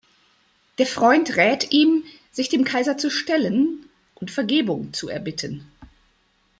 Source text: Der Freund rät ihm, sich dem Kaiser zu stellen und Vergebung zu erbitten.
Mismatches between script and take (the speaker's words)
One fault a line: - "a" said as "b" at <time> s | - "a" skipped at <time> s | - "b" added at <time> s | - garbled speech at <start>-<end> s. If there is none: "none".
none